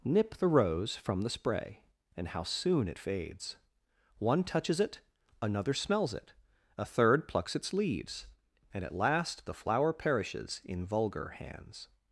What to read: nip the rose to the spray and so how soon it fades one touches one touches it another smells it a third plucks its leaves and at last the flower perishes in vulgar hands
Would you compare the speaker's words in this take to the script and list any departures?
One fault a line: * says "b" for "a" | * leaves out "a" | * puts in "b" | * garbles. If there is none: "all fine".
* says "from" for "to"
* leaves out "so"
* leaves out "one touches"